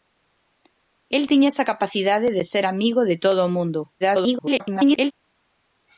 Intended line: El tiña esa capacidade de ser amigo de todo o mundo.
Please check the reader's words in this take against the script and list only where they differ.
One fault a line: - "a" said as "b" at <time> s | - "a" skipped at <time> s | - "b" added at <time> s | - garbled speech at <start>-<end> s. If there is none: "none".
- garbled speech at 4.0-5.1 s